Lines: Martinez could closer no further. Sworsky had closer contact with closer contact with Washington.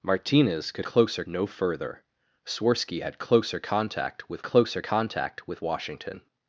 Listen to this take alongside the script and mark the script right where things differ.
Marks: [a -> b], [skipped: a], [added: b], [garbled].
Martinez could closer no further. Sworsky had closer contact with closer contact with Washington.